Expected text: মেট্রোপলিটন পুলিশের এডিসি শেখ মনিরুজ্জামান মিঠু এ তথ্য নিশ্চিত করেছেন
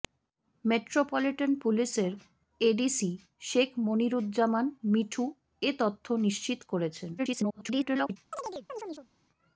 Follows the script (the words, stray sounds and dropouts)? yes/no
no